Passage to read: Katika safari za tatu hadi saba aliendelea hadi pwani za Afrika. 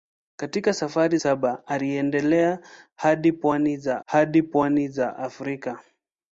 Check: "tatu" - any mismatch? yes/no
yes